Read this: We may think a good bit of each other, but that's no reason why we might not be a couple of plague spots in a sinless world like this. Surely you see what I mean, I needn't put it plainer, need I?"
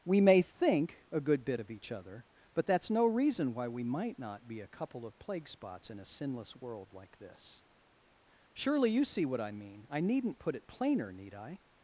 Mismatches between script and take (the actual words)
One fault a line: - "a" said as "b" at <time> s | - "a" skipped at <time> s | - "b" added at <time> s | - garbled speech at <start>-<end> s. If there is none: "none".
none